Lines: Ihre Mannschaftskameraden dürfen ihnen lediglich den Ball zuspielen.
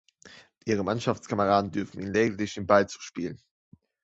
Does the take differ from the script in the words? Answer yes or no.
no